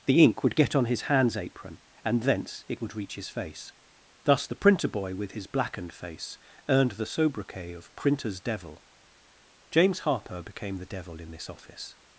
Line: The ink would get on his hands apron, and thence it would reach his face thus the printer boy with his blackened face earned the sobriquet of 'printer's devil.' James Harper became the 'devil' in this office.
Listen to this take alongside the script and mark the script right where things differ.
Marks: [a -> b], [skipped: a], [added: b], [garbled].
The ink would get on his hands apron, and thence it would reach his face thus the printer boy with his blackened face earned the sobriquet of 'printer's devil.' James Harper became the 'devil' in this office.